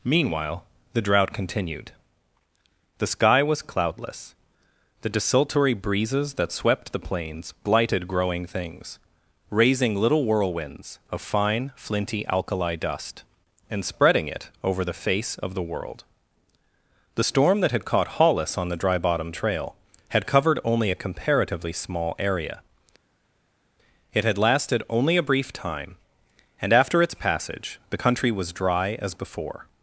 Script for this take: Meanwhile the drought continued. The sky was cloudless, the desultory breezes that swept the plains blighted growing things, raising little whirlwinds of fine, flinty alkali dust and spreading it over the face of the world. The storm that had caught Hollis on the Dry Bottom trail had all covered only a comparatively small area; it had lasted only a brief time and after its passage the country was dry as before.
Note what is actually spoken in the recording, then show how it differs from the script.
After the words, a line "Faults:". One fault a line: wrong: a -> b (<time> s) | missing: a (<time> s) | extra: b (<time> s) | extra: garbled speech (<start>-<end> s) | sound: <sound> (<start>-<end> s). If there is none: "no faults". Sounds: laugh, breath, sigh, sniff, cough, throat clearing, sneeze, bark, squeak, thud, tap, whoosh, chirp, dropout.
Meanwhile the drought continued. The sky was cloudless, the desultory breezes that swept the plains blighted growing things, raising little whirlwinds of fine, flinty alkali dust and spreading it over the face of the world. The storm that had caught Hollis on the Dry Bottom trail had covered only a comparatively small area; it had lasted only a brief time and after its passage the country was dry as before.
Faults:
missing: all (20.3 s)